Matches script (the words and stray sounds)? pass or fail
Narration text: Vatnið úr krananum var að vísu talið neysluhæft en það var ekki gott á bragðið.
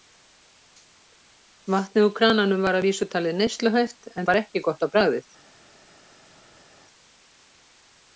fail